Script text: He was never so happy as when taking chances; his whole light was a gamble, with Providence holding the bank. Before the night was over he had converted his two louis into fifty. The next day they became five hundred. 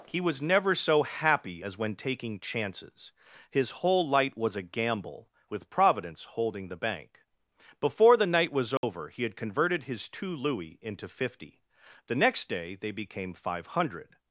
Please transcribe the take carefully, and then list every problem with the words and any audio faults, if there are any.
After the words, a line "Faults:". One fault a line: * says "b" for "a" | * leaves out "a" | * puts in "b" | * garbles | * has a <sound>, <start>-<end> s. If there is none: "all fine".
He was never so happy as when taking chances; his whole light was a gamble, with Providence holding the bank. Before the night was over he had converted his two louis into fifty. The next day they became five hundred.
Faults:
* has a dropout, 8.8-8.8 s